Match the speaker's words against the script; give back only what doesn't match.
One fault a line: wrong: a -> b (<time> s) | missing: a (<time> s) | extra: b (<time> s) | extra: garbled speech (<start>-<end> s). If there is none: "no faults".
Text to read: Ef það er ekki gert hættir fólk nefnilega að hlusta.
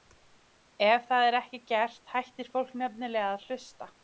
no faults